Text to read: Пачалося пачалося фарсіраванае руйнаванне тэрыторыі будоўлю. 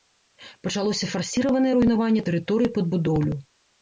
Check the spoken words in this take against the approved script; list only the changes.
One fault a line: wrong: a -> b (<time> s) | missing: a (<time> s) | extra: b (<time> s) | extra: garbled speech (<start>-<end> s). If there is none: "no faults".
missing: пачалося (1.1 s)
extra: пад (2.8 s)